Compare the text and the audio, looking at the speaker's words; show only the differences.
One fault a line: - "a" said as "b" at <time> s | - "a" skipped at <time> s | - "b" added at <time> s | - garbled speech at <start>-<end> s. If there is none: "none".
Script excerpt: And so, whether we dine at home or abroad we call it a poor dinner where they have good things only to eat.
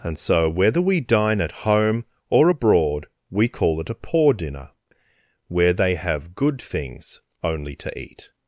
none